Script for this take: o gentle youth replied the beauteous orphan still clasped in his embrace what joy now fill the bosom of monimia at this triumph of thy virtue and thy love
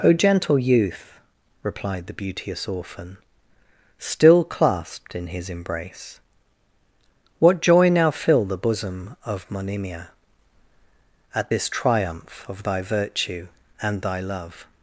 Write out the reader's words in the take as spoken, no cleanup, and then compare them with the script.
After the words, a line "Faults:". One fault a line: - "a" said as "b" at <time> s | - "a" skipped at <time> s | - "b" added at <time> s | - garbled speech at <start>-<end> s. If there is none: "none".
o gentle youth replied the beauteous orphan still clasped in his embrace what joy now fill the bosom of monimia at this triumph of thy virtue and thy love
Faults:
none